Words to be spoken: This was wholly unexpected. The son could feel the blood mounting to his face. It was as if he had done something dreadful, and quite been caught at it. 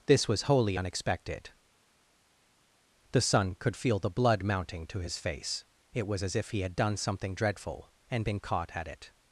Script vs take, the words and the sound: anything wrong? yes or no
yes